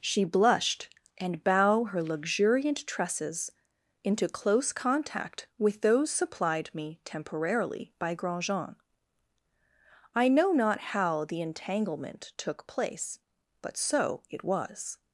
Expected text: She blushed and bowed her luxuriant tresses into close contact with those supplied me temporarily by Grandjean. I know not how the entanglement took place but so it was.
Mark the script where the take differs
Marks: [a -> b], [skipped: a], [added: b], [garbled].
She blushed and [bowed -> bow] her luxuriant tresses into close contact with those supplied me temporarily by Grandjean. I know not how the entanglement took place but so it was.